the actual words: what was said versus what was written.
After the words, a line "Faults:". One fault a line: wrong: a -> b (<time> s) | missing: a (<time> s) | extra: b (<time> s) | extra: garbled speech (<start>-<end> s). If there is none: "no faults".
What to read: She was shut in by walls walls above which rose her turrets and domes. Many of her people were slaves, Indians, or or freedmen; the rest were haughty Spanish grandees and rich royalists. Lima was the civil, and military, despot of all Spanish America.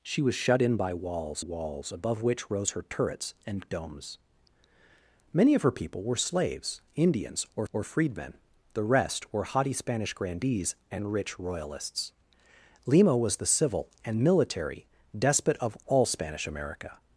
She was shut in by walls walls above which rose her turrets and domes. Many of her people were slaves, Indians, or or freedmen; the rest were haughty Spanish grandees and rich royalists. Lima was the civil, and military, despot of all Spanish America.
Faults:
no faults